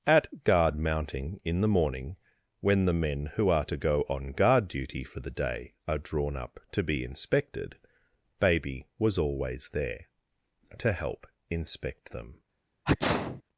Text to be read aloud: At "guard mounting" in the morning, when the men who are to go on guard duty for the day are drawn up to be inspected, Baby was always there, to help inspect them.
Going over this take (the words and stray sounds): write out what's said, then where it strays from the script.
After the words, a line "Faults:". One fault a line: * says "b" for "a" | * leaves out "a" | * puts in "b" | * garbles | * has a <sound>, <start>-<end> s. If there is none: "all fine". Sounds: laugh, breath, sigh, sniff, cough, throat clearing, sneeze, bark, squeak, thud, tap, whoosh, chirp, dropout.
At "guard mounting" in the morning, when the men who are to go on guard duty for the day are drawn up to be inspected, Baby was always there, to help inspect them.
Faults:
* has a sneeze, 12.8-13.4 s